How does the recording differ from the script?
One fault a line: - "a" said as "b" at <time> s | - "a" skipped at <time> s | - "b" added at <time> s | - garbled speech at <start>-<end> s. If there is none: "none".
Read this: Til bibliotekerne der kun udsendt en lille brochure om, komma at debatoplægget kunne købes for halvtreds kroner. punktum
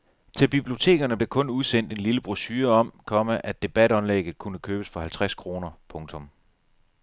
none